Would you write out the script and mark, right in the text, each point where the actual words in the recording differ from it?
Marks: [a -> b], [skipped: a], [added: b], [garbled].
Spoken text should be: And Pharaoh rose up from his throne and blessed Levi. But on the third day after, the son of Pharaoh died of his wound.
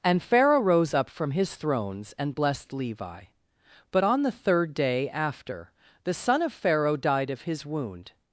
And Pharaoh rose up from his [throne -> thrones] and blessed Levi. But on the third day after, the son of Pharaoh died of his wound.